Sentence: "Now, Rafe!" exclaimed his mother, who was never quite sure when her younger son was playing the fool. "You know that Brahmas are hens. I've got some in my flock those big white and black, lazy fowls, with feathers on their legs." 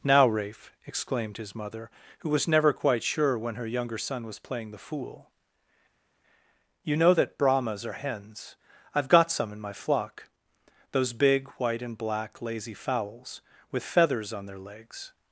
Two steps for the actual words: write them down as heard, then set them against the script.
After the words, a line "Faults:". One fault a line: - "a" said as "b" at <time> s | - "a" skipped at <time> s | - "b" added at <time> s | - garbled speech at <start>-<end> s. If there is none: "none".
"Now, Rafe!" exclaimed his mother, who was never quite sure when her younger son was playing the fool. "You know that Brahmas are hens. I've got some in my flock those big white and black, lazy fowls, with feathers on their legs."
Faults:
none